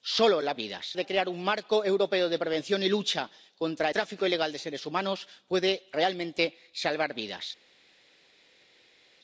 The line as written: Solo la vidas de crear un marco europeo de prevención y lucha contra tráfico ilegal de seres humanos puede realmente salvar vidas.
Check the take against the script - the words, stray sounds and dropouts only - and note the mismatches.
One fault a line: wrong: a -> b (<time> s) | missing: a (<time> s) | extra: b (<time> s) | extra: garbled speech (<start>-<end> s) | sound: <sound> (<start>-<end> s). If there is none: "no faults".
no faults